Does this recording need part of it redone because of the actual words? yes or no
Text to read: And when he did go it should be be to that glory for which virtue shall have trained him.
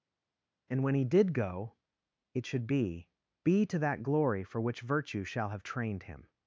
no